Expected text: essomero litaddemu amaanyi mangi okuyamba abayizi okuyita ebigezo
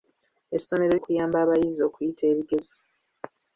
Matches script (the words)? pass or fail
fail